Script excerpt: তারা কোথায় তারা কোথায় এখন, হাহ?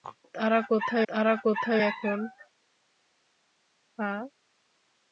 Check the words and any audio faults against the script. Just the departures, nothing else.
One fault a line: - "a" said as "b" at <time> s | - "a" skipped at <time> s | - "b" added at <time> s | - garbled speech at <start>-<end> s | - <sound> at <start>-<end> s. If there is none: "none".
none